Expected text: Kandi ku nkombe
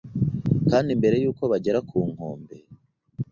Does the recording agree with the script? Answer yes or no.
no